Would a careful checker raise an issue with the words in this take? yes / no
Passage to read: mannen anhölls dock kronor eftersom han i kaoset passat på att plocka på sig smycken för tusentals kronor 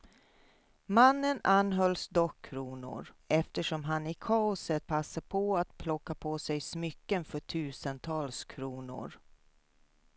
no